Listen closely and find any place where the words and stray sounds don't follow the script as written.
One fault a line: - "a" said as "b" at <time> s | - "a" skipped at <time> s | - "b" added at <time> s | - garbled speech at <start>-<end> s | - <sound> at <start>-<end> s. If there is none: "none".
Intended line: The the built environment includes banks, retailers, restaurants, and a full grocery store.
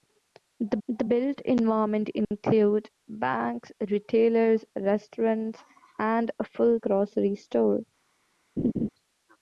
- laugh at 8.6-8.9 s